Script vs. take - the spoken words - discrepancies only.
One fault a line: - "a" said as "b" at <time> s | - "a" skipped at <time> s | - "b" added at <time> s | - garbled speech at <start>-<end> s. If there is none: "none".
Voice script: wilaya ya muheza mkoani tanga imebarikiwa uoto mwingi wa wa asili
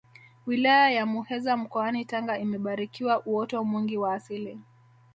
- "wa" skipped at 4.1 s